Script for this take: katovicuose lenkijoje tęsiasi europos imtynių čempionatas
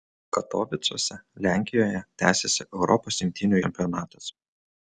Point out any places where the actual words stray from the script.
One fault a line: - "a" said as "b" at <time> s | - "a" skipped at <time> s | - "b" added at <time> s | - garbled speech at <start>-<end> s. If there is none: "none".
none